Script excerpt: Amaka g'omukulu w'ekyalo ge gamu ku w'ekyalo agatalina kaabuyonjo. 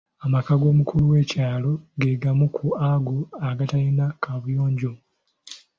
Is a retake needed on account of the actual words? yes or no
yes